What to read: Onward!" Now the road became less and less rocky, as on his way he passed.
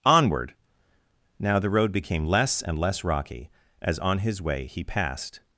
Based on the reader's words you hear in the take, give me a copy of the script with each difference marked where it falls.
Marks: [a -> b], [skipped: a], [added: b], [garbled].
Onward!" Now the road became less and less rocky, as on his way he passed.